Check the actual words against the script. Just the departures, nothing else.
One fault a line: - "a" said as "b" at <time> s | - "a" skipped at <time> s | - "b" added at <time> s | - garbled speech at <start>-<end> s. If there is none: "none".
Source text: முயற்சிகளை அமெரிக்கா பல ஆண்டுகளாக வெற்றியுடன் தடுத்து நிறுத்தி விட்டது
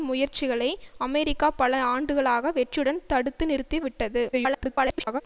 - garbled speech at 4.3-5.2 s